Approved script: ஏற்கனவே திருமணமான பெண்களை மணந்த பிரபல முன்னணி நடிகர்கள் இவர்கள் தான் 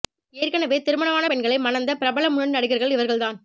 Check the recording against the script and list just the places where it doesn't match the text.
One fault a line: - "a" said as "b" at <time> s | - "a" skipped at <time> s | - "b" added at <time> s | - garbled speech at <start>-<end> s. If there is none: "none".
none